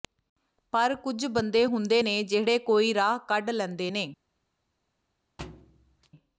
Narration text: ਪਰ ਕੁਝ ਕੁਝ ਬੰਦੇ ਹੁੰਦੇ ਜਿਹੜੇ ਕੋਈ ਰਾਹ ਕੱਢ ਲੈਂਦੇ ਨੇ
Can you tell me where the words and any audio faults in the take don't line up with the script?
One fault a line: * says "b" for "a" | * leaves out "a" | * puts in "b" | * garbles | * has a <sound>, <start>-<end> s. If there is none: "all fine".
* leaves out "ਕੁਝ"
* puts in "ਨੇ"
* has a thud, 5.4-6.1 s